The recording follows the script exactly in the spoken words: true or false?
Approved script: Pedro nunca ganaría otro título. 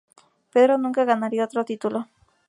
true